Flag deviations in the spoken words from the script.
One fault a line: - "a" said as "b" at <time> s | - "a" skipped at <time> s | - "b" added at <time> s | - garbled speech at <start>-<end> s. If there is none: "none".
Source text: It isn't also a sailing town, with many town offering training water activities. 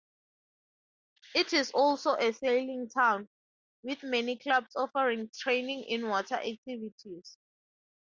- "isn't" said as "is" at 1.5 s
- "town" said as "clubs" at 4.4 s
- "in" added at 5.8 s